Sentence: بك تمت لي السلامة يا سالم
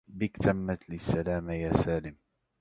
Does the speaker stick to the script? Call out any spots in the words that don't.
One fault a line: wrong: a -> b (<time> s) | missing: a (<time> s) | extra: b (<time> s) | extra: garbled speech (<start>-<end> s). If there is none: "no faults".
no faults